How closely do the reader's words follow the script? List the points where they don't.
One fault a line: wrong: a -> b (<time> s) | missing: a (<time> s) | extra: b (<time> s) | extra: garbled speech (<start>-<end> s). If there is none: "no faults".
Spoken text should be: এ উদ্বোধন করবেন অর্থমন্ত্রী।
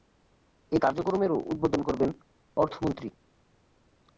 extra: কার্যক্রমেরও (0.8 s)